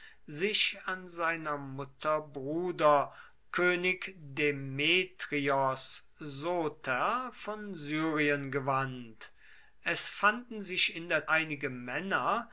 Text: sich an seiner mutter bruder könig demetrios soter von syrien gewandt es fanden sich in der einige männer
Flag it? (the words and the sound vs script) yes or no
no